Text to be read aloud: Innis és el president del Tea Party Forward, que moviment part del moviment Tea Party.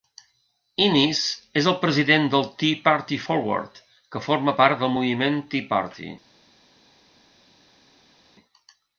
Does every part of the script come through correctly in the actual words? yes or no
no